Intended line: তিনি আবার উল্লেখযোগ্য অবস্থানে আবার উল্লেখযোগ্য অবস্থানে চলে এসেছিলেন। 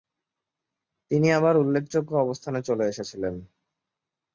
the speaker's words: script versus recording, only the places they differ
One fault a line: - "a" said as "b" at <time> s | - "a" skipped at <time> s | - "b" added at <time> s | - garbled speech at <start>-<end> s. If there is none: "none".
- "আবার উল্লেখযোগ্য অবস্থানে" skipped at 2.6 s